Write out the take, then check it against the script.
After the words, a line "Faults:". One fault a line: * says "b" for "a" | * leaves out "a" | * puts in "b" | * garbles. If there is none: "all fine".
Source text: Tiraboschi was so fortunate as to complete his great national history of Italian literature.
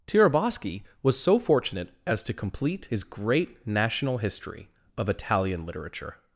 Tiraboschi was so fortunate as to complete his great national history of Italian literature.
Faults:
all fine